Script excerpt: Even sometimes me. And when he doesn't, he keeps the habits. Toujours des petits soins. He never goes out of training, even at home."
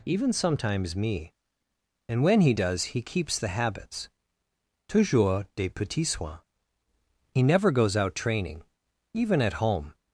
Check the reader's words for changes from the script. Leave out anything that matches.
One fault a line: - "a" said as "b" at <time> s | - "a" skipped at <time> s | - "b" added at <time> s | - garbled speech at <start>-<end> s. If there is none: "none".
- "doesn't" said as "does" at 2.5 s
- "of" skipped at 8.2 s